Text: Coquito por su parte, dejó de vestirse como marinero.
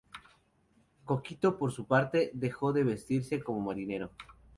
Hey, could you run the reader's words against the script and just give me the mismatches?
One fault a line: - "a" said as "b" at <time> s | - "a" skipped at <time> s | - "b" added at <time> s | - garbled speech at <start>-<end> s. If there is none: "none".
none